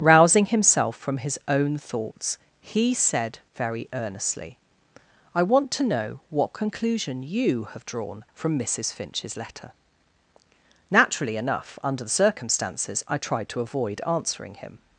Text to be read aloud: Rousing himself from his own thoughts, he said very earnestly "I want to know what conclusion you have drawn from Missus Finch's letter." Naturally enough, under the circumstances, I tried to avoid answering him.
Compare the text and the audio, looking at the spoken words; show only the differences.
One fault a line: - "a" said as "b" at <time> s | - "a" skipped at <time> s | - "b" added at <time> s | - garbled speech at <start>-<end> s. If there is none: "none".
none